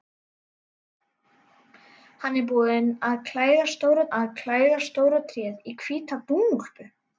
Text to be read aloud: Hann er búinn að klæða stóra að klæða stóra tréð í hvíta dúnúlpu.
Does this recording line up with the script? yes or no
yes